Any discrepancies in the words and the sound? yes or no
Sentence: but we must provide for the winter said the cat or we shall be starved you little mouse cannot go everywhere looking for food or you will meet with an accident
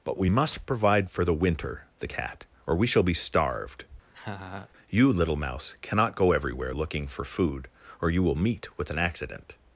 yes